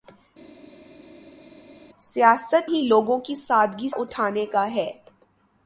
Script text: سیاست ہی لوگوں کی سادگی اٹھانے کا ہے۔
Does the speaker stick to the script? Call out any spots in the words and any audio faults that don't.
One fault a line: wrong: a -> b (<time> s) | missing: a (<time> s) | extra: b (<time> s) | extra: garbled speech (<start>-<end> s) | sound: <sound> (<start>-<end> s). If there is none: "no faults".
no faults